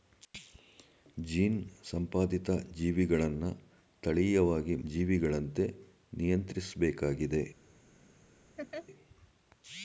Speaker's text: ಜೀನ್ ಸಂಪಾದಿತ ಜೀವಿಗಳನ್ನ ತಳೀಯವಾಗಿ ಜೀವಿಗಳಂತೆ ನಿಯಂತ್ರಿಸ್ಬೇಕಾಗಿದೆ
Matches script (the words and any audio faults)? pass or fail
fail